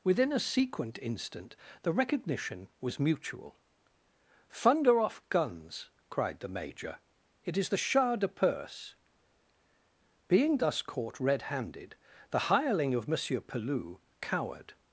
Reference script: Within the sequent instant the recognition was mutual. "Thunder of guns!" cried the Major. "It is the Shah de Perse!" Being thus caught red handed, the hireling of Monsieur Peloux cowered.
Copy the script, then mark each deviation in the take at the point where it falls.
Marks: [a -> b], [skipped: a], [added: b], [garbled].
Within [the -> a] sequent instant the recognition was mutual. "Thunder [of -> off] guns!" cried the Major. "It is the Shah de Perse!" Being thus caught red handed, the hireling of Monsieur Peloux cowered.